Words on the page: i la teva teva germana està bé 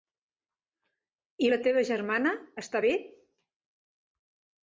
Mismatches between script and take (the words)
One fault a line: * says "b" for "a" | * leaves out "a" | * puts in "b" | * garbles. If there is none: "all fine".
* leaves out "teva"